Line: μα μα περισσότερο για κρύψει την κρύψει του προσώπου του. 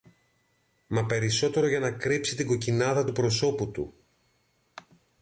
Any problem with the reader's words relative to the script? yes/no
yes